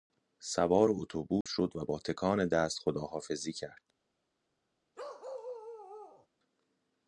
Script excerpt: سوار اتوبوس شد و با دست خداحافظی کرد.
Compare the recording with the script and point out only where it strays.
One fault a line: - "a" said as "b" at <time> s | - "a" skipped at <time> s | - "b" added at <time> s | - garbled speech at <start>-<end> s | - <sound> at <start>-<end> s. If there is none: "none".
- dropout at 1.4-1.5 s
- "تکان" added at 2.0 s
- bark at 5.0-6.3 s